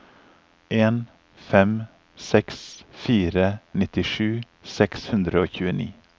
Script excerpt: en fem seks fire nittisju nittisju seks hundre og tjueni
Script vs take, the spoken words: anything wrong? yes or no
yes